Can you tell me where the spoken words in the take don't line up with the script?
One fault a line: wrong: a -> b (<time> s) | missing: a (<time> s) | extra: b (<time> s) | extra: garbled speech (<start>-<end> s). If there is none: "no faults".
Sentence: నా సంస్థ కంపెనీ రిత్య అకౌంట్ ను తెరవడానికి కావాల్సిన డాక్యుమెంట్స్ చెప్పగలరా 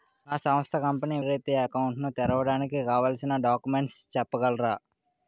no faults